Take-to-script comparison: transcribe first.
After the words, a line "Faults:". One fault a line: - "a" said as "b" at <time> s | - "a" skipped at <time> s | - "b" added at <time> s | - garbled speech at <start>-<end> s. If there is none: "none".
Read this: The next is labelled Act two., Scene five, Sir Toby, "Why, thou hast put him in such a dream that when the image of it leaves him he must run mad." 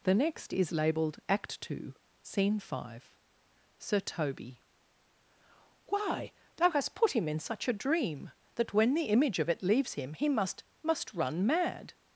The next is labelled Act two., Scene five, Sir Toby, "Why, thou hast put him in such a dream that when the image of it leaves him he must must run mad."
Faults:
- "must" added at 10.8 s